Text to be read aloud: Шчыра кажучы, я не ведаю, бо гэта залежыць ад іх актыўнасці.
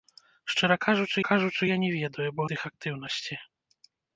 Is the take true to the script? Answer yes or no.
no